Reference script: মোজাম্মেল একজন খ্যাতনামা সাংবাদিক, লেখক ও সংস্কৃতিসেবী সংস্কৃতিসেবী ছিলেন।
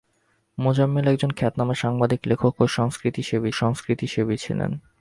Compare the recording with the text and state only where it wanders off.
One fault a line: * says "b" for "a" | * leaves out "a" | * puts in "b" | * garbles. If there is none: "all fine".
all fine